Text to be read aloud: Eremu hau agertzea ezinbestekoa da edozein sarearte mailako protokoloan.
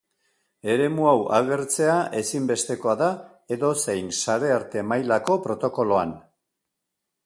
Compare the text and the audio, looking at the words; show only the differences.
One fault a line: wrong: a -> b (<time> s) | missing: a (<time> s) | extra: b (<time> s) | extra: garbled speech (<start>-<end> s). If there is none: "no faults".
no faults